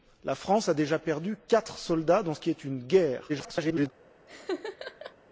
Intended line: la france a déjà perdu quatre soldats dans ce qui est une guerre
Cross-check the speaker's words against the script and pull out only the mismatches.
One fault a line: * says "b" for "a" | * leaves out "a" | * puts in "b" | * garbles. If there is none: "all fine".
* garbles